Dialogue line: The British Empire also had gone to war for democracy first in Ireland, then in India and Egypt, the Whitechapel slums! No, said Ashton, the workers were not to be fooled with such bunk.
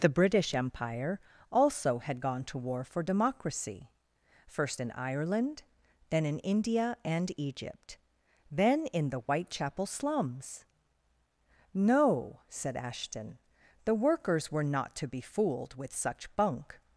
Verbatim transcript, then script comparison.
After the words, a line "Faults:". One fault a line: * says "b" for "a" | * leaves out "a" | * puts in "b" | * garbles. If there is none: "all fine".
The British Empire also had gone to war for democracy first in Ireland, then in India and Egypt, then in the Whitechapel slums! No, said Ashton, the workers were not to be fooled with such bunk.
Faults:
* puts in "then in"